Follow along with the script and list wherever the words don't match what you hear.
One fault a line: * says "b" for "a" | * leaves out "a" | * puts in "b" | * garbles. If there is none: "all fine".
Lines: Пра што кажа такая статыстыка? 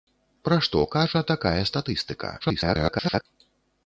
* garbles